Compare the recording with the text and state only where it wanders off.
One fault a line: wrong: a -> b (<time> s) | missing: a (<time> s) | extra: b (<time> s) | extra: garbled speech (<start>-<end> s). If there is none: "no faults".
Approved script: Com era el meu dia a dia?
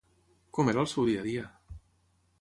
wrong: meu -> seu (0.9 s)